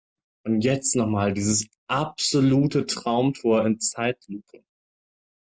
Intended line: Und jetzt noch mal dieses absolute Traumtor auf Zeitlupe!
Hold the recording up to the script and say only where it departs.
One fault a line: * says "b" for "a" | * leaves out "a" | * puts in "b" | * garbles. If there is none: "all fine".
* says "in" for "auf"